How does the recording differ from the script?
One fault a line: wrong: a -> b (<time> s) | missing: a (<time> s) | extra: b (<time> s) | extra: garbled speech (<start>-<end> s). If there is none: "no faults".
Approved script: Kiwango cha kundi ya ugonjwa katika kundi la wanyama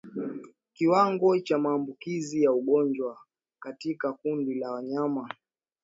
wrong: kundi -> maambukizi (1.6 s)